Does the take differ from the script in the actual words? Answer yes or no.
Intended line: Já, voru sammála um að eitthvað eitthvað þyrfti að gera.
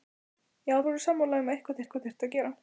no